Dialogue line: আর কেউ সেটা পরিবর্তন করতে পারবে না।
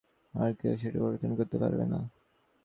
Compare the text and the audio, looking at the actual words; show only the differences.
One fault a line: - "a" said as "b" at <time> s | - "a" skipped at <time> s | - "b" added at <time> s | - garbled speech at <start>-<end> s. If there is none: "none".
none